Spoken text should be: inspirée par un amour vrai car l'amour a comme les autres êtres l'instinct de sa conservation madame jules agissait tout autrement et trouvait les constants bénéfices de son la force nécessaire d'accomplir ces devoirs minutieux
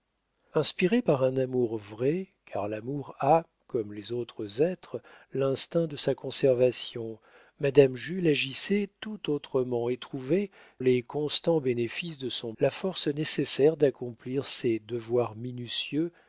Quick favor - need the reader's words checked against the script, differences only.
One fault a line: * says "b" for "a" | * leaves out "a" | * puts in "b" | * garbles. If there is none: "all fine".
all fine